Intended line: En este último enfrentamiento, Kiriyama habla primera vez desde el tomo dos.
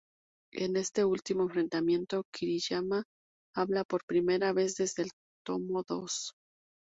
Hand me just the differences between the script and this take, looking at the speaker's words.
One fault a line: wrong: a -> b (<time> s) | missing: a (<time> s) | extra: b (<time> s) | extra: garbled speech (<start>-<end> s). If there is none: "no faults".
extra: por (3.8 s)